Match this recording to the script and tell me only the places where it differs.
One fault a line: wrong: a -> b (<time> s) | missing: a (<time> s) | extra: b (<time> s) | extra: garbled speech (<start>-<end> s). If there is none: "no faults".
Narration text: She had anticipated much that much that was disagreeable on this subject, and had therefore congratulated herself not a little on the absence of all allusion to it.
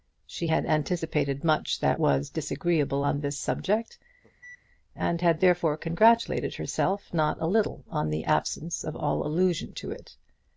missing: much that (2.0 s)